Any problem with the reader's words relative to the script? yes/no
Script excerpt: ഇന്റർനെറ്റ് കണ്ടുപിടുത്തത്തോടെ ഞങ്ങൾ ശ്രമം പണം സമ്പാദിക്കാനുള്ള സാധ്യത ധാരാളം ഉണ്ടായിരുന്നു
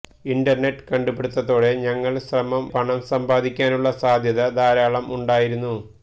no